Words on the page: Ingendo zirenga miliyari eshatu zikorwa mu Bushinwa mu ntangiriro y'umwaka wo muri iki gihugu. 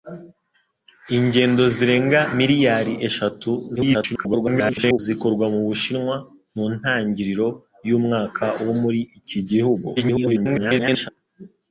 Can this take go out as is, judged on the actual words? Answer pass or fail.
fail